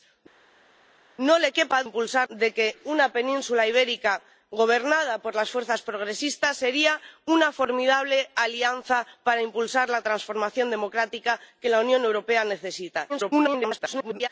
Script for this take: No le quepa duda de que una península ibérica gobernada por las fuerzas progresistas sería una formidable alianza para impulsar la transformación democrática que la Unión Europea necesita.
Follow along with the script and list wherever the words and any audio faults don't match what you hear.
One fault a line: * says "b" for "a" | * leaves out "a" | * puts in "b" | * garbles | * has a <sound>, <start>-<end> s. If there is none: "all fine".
* says "impulsar" for "duda"
* garbles